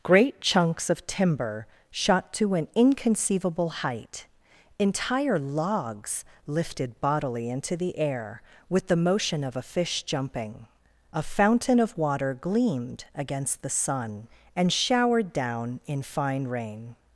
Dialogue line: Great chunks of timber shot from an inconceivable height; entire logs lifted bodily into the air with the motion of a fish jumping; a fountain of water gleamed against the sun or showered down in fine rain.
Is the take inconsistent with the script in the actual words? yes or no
yes